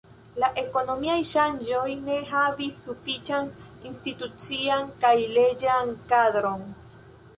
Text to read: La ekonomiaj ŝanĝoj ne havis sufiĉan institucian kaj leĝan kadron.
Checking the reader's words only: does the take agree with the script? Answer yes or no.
yes